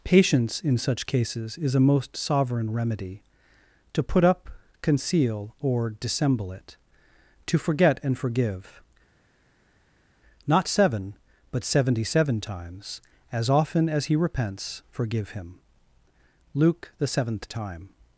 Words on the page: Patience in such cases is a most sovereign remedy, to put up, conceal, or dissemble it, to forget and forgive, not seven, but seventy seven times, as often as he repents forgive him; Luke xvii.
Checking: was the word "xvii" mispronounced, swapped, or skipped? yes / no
yes